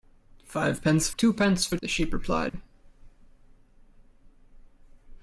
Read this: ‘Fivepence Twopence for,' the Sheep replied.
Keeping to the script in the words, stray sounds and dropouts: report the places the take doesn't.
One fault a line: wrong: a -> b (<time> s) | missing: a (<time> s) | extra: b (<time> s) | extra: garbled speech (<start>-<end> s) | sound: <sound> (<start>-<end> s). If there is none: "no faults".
sound: dropout (2.5-2.5 s)